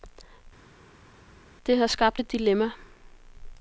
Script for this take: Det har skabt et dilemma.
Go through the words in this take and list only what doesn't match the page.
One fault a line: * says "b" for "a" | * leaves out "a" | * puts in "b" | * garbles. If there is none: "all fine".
all fine